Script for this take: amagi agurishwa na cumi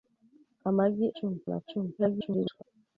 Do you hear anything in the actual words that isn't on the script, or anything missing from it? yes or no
yes